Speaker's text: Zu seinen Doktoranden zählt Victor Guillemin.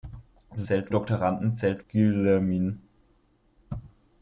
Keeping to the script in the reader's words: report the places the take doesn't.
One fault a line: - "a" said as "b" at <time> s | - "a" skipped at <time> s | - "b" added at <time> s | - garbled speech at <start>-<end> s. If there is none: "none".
- "seinen" said as "zählt" at 0.6 s
- "Victor" skipped at 1.9 s